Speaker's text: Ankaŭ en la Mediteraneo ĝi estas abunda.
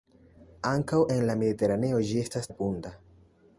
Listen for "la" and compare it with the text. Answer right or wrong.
right